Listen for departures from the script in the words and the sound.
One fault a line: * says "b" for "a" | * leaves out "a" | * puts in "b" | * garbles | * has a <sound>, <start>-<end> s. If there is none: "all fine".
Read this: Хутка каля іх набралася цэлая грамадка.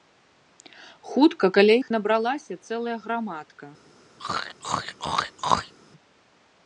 * has a throat clearing, 4.2-5.7 s